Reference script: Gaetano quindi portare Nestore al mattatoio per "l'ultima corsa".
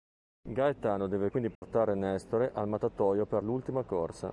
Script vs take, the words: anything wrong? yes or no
yes